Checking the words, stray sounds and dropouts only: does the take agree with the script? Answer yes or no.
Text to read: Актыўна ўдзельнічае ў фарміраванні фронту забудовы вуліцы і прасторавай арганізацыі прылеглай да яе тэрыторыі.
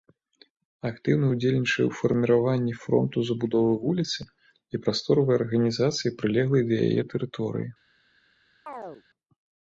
no